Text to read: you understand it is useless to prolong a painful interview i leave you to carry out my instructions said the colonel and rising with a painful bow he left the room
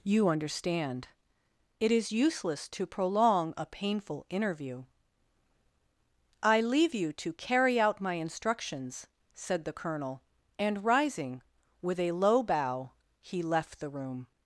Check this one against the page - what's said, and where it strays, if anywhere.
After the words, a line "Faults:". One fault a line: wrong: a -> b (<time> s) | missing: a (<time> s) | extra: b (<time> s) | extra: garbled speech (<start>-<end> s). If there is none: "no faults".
you understand it is useless to prolong a painful interview i leave you to carry out my instructions said the colonel and rising with a low bow he left the room
Faults:
wrong: painful -> low (12.1 s)